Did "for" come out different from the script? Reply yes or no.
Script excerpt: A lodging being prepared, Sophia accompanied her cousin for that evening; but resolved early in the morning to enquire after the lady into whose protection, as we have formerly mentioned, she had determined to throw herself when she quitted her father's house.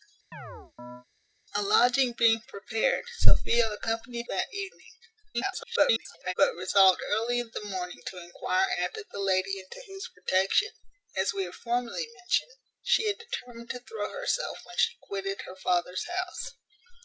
yes